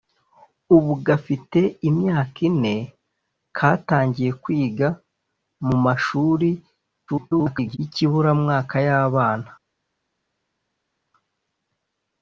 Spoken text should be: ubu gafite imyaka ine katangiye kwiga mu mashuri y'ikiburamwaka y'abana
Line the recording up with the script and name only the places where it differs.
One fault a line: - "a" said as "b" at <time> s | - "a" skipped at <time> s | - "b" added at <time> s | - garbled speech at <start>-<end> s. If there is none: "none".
- garbled speech at 7.1-7.8 s